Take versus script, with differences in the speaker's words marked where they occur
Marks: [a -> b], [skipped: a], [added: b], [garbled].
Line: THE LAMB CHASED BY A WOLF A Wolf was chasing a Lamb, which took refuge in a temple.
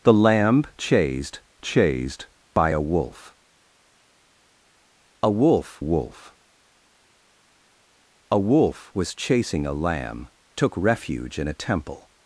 THE LAMB CHASED [added: CHASED] BY A WOLF A Wolf [added: WOLF A Wolf] was chasing a Lamb, [skipped: which] took refuge in a temple.